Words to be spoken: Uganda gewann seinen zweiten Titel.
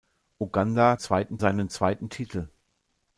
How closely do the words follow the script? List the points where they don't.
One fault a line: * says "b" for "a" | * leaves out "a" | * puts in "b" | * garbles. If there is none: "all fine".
* says "zweiten" for "gewann"